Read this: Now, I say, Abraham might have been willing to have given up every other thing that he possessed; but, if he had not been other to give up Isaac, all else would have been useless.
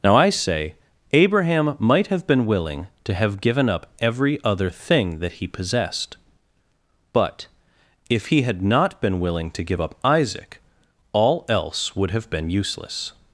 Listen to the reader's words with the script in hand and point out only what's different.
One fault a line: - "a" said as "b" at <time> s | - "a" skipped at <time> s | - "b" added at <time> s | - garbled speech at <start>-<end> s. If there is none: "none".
- "other" said as "willing" at 9.2 s